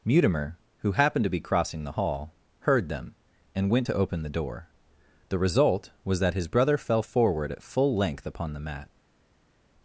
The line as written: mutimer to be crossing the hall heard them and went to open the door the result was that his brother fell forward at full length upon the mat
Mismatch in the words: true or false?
true